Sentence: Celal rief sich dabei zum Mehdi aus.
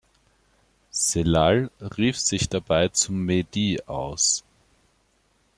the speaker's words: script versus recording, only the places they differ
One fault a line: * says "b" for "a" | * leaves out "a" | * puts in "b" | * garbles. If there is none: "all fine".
all fine